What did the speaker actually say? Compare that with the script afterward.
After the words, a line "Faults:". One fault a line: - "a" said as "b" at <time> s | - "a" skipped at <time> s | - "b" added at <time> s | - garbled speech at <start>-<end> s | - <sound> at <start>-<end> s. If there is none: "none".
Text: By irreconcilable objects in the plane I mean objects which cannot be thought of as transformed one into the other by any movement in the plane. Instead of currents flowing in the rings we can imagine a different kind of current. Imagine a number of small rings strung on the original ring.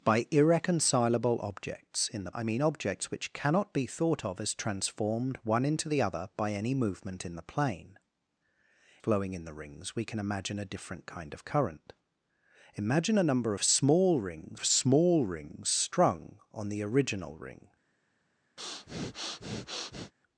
By irreconcilable objects in the I mean objects which cannot be thought of as transformed one into the other by any movement in the plane. Flowing in the rings we can imagine a different kind of current. Imagine a number of small rings of small rings strung on the original ring.
Faults:
- "plane" skipped at 2.3 s
- "Instead of currents" skipped at 8.0 s
- "of small rings" added at 14.5 s
- breath at 18.6-20.1 s